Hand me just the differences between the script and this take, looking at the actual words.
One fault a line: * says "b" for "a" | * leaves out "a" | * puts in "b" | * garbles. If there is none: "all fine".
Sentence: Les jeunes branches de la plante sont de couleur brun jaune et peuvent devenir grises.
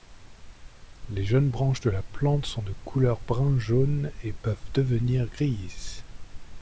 all fine